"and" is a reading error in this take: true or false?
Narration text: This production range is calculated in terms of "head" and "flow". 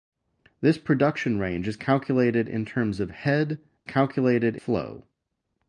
true